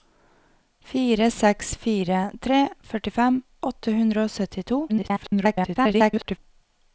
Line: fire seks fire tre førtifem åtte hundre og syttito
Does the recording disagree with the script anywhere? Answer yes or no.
yes